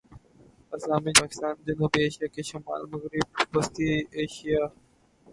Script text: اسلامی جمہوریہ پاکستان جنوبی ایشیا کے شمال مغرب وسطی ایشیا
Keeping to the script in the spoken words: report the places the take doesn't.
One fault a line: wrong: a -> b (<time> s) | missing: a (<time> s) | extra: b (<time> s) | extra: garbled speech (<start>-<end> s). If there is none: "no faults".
missing: جمہوریہ (1.1 s)